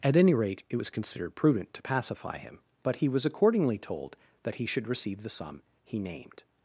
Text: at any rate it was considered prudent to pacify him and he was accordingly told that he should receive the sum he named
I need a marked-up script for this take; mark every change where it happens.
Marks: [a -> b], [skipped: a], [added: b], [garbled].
at any rate it was considered prudent to pacify him [and -> but] he was accordingly told that he should receive the sum he named